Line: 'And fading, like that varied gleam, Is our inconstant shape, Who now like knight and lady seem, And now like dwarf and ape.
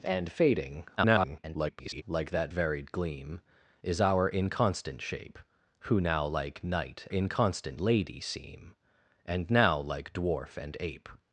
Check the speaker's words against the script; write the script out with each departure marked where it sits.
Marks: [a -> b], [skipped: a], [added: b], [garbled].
'And fading, [garbled] like that varied gleam, Is our inconstant shape, Who now like knight [and -> inconstant] lady seem, And now like dwarf and ape.